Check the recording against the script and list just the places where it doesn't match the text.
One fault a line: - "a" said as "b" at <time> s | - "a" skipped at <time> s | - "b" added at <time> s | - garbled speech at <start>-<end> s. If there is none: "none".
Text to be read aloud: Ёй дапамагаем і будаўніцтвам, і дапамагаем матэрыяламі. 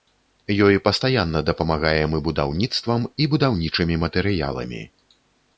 - "пастаянна" added at 0.9 s
- "дапамагаем" said as "будаўнічымі" at 3.4 s